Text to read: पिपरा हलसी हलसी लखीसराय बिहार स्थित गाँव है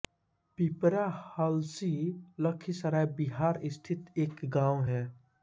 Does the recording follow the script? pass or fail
fail